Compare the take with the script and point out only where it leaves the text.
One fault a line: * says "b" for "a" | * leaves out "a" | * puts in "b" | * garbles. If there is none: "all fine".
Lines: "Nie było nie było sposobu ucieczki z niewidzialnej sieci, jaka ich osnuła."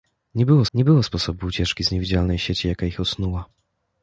all fine